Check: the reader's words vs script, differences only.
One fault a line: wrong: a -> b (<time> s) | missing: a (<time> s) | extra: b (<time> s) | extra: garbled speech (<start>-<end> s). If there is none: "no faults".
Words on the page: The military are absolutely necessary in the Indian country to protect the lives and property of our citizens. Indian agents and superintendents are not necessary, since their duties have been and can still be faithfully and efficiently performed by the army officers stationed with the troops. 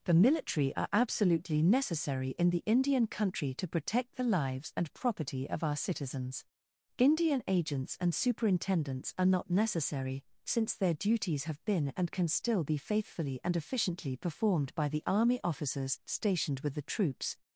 no faults